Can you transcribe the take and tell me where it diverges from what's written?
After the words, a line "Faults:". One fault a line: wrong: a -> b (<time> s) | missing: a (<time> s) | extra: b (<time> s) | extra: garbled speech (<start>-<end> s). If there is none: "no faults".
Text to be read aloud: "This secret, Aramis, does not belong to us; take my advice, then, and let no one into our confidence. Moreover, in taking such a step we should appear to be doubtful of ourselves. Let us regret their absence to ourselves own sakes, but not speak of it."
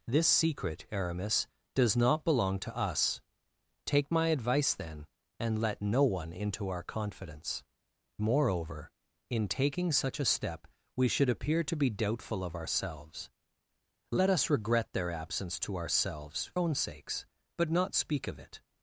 "This secret, Aramis, does not belong to us; take my advice, then, and let no one into our confidence. Moreover, in taking such a step we should appear to be doubtful of ourselves. Let us regret their absence to ourselves own sakes, but not speak of it."
Faults:
no faults